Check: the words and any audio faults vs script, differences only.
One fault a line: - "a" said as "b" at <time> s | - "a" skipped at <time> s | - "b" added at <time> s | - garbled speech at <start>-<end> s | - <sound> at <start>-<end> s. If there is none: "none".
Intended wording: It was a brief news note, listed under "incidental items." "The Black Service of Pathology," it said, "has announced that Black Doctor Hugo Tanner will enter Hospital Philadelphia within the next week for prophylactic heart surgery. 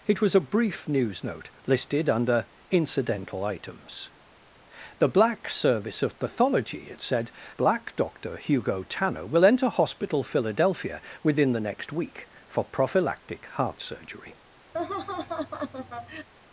- "has announced that" skipped at 7.3 s
- laugh at 14.7-16.3 s